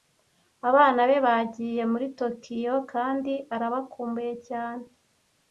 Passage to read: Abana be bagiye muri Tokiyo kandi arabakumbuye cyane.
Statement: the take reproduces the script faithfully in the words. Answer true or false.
true